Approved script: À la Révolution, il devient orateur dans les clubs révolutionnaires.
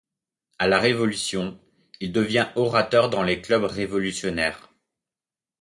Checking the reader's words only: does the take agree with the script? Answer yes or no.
yes